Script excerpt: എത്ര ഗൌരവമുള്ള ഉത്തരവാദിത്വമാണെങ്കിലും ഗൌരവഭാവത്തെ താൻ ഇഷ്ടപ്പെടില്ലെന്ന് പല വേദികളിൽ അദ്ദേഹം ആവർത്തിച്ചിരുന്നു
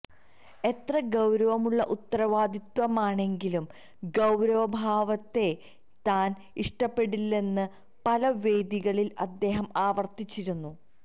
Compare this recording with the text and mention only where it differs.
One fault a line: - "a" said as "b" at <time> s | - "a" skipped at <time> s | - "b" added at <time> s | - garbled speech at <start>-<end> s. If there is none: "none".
none